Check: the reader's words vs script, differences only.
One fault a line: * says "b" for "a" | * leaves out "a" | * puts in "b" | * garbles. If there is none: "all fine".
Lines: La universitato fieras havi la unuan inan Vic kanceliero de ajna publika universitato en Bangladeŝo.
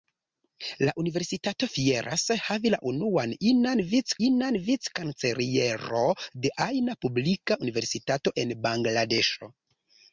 * puts in "inan Vic"